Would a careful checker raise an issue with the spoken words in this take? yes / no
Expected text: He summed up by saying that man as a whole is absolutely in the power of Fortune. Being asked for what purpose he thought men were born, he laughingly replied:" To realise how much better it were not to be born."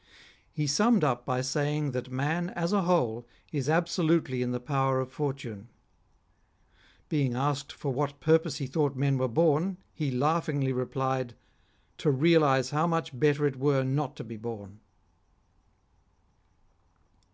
no